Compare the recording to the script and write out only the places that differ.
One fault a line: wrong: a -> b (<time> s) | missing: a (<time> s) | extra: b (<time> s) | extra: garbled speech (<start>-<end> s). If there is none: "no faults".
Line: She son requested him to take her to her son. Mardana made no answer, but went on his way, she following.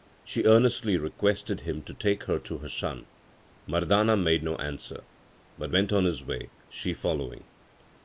wrong: son -> earnestly (0.5 s)